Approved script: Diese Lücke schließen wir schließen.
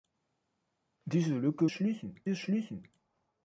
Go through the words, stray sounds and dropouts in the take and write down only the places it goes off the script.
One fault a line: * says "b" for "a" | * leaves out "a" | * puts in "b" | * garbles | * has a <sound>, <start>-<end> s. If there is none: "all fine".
all fine